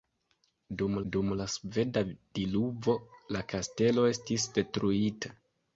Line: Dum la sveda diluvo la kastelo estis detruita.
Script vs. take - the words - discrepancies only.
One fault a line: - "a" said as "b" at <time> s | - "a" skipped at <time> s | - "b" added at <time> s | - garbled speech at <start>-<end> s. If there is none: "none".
- "dum" added at 1.1 s